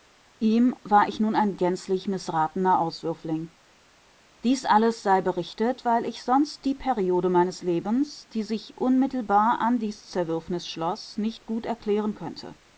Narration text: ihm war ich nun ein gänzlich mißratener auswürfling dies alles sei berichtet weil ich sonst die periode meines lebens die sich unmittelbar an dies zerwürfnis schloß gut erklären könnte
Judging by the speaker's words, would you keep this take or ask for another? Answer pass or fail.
fail